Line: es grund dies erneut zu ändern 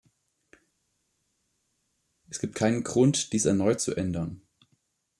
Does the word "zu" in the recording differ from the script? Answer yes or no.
no